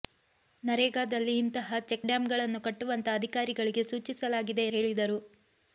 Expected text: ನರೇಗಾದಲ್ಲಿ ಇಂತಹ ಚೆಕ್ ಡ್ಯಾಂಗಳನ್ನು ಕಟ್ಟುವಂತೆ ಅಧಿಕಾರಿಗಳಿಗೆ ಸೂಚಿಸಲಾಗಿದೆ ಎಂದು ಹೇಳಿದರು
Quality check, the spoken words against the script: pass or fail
fail